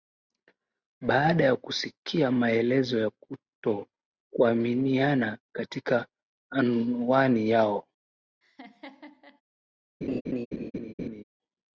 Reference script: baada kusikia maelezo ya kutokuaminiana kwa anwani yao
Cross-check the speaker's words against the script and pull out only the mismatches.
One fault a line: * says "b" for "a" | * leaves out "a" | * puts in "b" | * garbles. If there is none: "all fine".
* puts in "ya"
* says "katika" for "kwa"